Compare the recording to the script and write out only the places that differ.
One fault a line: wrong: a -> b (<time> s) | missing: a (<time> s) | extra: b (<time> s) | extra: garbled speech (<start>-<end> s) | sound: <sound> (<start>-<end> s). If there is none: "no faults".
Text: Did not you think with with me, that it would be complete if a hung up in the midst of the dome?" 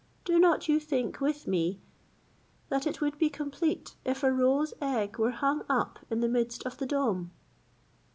wrong: Did -> Do (0.2 s)
missing: with (1.4 s)
extra: roe's egg were (4.3 s)